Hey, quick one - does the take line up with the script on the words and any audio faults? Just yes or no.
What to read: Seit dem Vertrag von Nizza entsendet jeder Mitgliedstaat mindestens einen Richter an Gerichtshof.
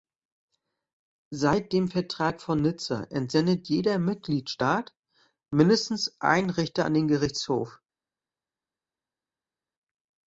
no